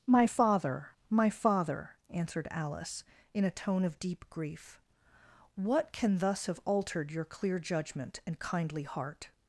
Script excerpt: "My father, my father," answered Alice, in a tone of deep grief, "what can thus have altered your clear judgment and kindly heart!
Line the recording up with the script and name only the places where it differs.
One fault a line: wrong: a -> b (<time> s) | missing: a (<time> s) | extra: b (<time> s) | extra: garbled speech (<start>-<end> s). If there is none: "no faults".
no faults